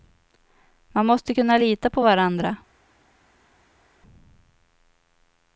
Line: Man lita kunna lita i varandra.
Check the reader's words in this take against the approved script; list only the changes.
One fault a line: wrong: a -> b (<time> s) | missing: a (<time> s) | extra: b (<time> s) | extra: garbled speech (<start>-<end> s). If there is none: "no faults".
wrong: lita -> måste (1.1 s)
wrong: i -> på (1.9 s)